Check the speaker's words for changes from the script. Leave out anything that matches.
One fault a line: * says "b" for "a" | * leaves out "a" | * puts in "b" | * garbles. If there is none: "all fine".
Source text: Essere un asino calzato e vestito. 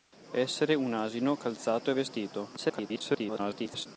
* garbles